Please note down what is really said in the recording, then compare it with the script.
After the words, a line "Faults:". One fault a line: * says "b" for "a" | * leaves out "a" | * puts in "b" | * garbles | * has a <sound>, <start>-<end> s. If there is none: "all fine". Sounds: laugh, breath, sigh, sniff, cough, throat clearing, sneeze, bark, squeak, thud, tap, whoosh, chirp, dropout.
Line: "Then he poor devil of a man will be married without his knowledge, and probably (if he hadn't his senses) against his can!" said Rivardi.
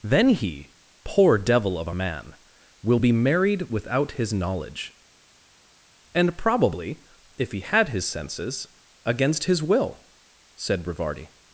"Then he poor devil of a man will be married without his knowledge, and probably (if he had his senses) against his will!" said Rivardi.
Faults:
* says "had" for "hadn't"
* says "will" for "can"